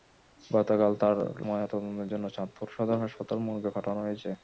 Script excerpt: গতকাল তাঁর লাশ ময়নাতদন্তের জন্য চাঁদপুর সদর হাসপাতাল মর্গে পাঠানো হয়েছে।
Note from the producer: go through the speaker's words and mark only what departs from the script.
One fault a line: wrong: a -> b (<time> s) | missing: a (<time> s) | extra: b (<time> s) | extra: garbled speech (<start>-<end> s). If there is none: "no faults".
missing: লাশ (1.1 s)